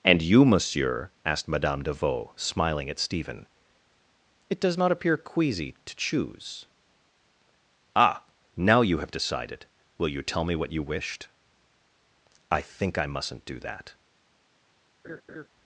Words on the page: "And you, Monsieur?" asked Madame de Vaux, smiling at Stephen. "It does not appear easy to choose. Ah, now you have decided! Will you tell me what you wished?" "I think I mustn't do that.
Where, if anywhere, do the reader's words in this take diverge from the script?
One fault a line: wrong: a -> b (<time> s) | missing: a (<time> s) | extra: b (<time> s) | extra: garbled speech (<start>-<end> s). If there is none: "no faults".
wrong: easy -> queasy (5.2 s)